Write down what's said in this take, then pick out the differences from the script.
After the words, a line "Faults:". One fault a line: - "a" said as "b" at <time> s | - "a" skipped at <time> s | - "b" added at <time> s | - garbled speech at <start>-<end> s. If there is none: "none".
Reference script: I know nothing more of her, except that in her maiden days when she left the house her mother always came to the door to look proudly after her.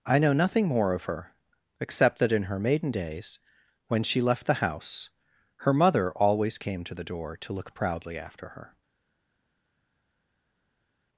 I know nothing more of her, except that in her maiden days when she left the house her mother always came to the door to look proudly after her.
Faults:
none